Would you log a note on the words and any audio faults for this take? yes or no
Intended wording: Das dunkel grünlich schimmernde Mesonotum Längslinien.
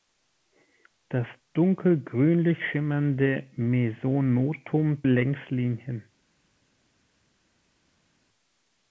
no